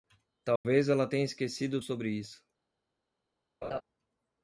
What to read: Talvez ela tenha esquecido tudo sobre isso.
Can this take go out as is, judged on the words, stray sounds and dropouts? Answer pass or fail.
fail